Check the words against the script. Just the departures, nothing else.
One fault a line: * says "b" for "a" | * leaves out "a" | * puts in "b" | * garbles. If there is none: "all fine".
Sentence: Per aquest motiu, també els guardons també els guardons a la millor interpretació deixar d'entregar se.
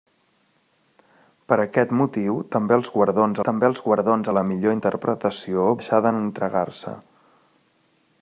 all fine